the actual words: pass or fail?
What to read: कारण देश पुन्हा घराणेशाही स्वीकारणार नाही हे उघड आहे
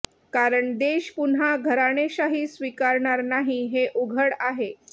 pass